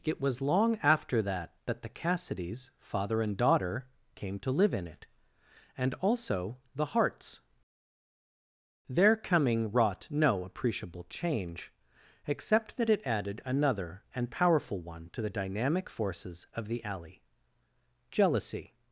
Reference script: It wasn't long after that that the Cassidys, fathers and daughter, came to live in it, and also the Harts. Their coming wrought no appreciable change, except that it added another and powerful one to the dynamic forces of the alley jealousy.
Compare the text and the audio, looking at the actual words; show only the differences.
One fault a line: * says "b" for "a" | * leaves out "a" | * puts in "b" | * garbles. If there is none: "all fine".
* says "was" for "wasn't"
* says "father" for "fathers"